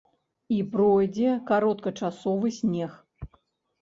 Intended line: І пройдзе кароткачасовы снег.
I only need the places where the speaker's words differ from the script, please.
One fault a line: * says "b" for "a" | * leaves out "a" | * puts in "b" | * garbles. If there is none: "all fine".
all fine